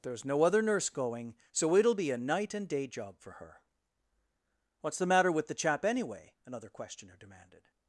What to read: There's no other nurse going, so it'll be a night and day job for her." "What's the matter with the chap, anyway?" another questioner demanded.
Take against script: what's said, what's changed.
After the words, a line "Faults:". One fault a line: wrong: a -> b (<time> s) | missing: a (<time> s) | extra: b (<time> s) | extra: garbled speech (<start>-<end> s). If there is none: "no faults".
There's no other nurse going, so it'll be a night and day job for her." "What's the matter with the chap, anyway?" another questioner demanded.
Faults:
no faults